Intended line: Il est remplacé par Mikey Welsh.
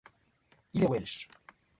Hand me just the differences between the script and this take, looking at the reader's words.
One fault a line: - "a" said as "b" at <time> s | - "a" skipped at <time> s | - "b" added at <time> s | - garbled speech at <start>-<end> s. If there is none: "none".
- "remplacé par Mikey" skipped at 0.9 s